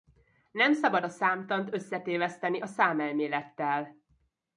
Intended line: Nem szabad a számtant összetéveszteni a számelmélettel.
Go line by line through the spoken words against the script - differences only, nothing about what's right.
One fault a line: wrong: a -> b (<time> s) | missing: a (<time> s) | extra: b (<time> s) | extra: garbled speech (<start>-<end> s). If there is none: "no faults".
no faults